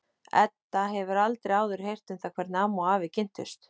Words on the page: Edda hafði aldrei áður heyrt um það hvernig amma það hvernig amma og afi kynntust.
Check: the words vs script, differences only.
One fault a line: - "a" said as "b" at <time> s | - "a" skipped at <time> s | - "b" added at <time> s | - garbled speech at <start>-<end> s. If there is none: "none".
- "hafði" said as "hefur" at 0.9 s
- "það hvernig amma" skipped at 2.9 s